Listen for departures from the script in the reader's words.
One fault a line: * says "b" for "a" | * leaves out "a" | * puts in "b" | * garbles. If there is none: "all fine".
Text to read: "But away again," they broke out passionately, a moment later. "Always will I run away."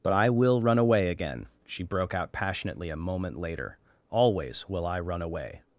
* puts in "I will run"
* says "she" for "they"